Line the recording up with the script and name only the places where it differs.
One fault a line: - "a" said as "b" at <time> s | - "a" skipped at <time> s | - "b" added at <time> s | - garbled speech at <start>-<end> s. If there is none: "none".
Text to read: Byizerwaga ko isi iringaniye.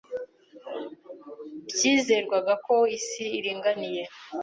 none